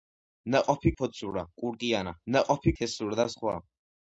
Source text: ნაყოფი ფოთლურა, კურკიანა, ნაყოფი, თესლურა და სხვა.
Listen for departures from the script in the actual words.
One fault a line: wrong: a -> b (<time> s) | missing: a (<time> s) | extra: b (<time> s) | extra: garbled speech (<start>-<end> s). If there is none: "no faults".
no faults